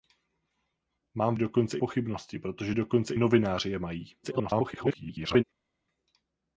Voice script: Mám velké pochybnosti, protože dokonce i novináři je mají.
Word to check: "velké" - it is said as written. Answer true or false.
false